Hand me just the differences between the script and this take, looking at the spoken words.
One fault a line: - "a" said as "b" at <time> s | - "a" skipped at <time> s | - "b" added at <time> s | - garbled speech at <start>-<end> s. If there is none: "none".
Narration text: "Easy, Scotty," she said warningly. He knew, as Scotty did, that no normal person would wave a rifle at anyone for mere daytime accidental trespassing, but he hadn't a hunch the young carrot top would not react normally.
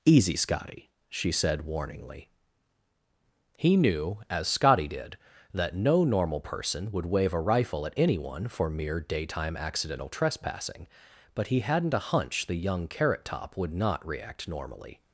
none